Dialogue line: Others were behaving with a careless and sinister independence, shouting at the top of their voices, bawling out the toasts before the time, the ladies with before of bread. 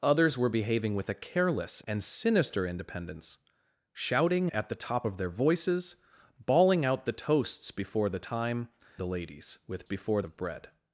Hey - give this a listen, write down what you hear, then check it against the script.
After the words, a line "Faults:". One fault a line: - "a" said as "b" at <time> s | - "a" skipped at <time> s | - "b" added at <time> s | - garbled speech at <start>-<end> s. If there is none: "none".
Others were behaving with a careless and sinister independence, shouting at the top of their voices, bawling out the toasts before the time, the ladies with before of bread.
Faults:
none